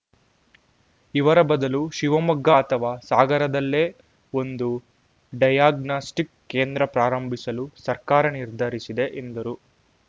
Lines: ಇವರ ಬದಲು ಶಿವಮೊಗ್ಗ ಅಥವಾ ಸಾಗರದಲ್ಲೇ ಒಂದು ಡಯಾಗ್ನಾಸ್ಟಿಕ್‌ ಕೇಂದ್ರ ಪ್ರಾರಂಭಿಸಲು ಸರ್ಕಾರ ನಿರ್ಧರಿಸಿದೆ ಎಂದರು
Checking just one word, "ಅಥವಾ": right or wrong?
right